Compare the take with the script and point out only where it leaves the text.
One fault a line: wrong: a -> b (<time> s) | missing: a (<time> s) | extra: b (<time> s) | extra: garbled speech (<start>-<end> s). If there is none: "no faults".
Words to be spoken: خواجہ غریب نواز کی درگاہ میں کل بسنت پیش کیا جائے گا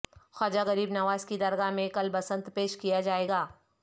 no faults